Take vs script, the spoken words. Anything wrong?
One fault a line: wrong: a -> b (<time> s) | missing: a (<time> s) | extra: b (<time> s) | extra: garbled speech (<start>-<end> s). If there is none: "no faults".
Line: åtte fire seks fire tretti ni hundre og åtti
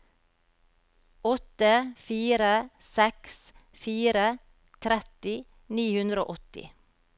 no faults